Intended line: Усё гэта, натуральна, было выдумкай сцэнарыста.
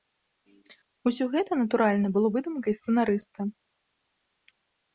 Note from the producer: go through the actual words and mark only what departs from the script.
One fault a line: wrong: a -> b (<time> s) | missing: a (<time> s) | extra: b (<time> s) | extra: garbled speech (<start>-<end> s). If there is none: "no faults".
no faults